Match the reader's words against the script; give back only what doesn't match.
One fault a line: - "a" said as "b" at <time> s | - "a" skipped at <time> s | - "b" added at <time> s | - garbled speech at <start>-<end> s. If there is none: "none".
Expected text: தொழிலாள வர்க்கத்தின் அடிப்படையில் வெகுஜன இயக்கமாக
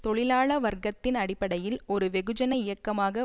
- "ஒரு" added at 1.9 s